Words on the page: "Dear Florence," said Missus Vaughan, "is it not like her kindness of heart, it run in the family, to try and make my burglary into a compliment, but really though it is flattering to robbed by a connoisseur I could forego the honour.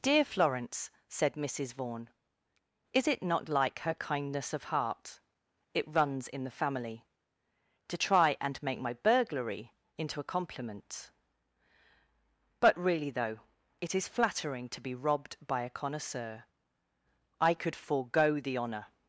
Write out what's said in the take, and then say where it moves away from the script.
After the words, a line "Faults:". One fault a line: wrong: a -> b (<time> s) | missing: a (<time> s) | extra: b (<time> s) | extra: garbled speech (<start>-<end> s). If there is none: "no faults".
"Dear Florence," said Missus Vaughan, "is it not like her kindness of heart, it runs in the family, to try and make my burglary into a compliment, but really though it is flattering to be robbed by a connoisseur I could forego the honour.
Faults:
wrong: run -> runs (5.9 s)
extra: be (14.8 s)